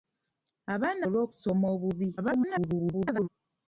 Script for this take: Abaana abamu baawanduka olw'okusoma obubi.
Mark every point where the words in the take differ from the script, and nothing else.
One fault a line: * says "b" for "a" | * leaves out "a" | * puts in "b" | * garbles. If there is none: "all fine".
* leaves out "abamu baawanduka"
* garbles